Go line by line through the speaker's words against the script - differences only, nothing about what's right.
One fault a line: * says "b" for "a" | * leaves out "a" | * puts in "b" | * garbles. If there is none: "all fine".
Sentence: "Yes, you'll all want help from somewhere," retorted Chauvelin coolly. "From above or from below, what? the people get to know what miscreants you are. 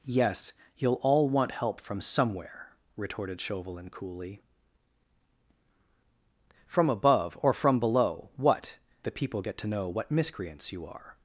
all fine